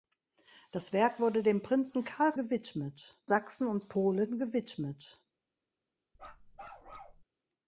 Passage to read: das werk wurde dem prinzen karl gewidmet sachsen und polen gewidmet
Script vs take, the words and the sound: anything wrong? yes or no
yes